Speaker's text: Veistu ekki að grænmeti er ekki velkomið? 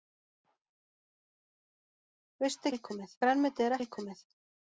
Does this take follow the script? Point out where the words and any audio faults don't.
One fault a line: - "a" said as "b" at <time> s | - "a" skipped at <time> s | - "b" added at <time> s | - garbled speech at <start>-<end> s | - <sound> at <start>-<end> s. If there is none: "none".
- "ekki" said as "velkomið" at 2.7 s
- "ekki" skipped at 3.8 s